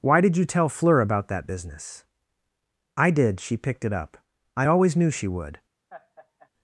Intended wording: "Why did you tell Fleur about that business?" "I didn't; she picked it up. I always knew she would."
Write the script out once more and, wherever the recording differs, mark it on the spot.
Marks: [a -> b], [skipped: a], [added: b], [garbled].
"Why did you tell Fleur about that business?" "I [didn't; -> did] she picked it up. I always knew she would."